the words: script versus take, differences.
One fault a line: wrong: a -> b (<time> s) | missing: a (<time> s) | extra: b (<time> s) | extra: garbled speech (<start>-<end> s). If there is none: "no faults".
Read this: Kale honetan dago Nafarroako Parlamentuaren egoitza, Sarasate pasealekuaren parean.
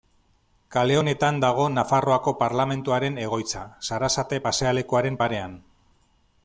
no faults